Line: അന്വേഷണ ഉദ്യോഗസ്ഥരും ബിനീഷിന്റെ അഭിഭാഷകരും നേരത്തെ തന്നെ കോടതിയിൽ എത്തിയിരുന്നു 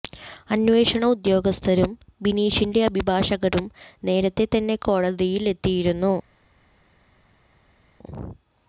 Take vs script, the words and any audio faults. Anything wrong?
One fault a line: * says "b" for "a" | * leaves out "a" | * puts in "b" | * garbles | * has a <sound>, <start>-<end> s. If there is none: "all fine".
all fine